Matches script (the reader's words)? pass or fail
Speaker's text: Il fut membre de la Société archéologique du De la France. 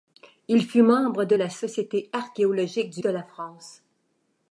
pass